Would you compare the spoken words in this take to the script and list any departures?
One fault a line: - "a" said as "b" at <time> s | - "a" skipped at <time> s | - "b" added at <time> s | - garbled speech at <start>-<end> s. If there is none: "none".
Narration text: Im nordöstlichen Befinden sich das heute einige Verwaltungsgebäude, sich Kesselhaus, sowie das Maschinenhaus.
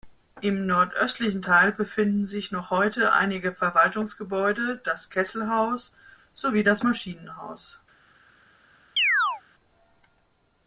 - "Teil" added at 1.4 s
- "das" said as "noch" at 2.5 s
- "sich" said as "das" at 4.8 s